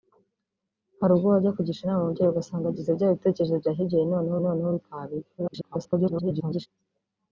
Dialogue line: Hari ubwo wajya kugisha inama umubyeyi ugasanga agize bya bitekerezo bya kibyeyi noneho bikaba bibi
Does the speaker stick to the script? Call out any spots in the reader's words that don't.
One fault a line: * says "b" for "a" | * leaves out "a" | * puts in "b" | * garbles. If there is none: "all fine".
* puts in "noneho"
* garbles